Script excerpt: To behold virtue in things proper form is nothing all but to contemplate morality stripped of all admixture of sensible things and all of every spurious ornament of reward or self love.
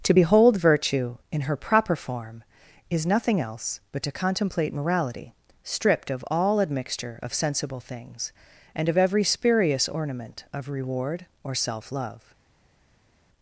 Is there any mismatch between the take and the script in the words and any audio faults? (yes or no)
yes